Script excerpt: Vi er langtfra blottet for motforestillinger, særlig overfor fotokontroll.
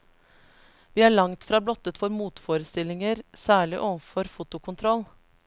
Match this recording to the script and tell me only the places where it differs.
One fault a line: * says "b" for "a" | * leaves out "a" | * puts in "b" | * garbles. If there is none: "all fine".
all fine